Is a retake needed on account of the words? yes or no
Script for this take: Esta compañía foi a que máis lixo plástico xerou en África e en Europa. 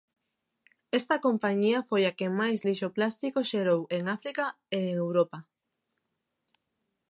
no